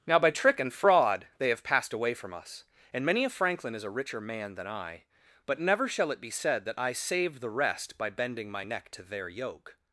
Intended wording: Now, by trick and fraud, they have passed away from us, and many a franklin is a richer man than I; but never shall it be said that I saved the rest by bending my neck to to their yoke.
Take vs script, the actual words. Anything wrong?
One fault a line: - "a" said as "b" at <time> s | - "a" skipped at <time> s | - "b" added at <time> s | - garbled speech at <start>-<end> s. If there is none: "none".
- "to" skipped at 9.0 s